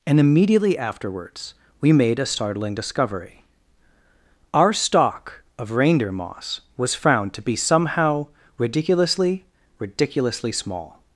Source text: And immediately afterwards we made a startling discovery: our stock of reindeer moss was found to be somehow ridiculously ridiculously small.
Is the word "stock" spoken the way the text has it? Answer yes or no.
yes